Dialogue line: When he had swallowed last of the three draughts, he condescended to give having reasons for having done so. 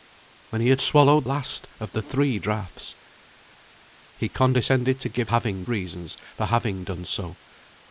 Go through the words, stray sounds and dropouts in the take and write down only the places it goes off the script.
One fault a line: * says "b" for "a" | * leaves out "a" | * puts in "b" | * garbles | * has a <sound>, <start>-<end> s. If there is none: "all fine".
all fine